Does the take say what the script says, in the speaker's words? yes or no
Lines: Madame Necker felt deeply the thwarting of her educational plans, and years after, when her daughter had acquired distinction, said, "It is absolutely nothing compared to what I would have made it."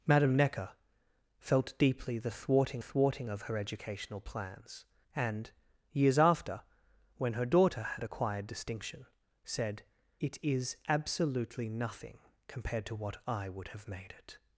no